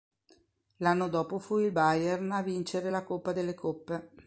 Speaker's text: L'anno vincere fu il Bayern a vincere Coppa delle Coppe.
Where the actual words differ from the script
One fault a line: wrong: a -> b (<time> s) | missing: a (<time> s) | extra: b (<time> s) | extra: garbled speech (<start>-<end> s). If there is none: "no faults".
wrong: vincere -> dopo (1.1 s)
extra: la (2.9 s)